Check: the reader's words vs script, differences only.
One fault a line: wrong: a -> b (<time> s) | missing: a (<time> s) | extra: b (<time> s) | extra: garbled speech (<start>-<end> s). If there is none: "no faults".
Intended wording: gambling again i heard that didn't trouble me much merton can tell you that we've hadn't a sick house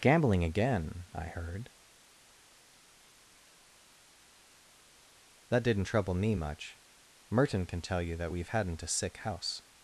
no faults